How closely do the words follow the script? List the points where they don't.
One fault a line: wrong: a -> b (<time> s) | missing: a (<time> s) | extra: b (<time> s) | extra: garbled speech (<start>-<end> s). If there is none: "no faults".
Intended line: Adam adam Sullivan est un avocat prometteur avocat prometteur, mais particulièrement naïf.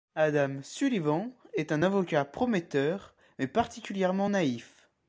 missing: adam (0.6 s)
missing: avocat prometteur (3.1 s)